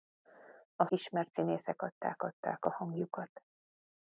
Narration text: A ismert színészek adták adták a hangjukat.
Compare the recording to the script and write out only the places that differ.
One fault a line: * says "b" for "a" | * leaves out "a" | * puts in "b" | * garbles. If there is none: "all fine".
all fine